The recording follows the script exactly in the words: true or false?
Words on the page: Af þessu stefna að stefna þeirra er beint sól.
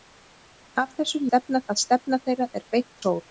true